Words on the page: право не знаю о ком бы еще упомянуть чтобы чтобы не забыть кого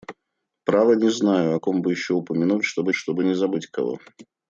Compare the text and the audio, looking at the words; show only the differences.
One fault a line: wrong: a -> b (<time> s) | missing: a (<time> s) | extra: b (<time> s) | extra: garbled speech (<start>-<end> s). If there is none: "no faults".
no faults